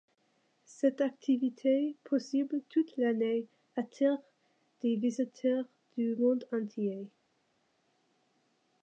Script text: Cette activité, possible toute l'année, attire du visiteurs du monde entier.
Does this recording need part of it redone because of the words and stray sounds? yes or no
yes